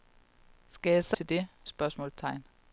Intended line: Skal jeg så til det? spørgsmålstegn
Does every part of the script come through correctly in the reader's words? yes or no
yes